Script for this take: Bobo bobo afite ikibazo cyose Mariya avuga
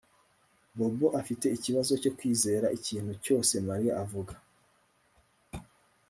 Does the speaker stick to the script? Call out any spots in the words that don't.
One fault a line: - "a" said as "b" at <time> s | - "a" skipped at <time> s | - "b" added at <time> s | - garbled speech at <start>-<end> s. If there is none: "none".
- "bobo" skipped at 1.1 s
- "cyo kwizera ikintu" added at 2.0 s